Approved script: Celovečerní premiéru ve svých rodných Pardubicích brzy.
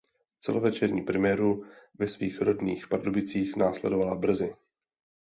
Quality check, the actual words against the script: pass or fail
fail